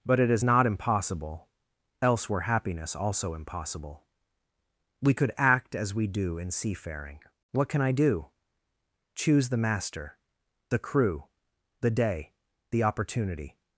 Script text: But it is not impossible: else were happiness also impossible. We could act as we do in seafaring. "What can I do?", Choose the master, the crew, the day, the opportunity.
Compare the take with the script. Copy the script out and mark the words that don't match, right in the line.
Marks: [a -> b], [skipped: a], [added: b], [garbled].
But it is not impossible: else were happiness also impossible. We could act as we do in seafaring. "What can I do?", Choose the master, the crew, the day, the opportunity.